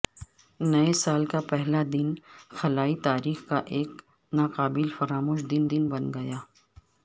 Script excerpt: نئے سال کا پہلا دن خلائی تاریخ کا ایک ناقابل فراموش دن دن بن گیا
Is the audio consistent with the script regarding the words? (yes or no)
yes